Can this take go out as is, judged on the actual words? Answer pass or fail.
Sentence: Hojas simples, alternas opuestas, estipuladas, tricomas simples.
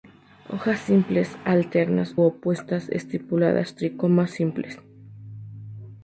pass